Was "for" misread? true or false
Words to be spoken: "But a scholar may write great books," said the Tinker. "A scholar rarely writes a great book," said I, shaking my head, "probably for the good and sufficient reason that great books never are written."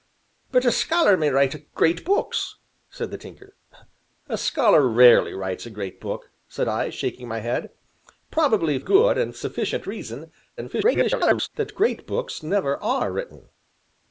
true